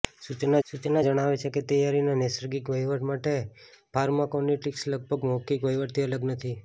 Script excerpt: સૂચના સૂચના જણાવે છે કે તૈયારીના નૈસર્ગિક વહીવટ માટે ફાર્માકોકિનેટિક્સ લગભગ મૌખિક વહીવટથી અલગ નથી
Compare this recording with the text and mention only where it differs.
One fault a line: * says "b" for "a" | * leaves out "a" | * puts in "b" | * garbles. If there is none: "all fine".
all fine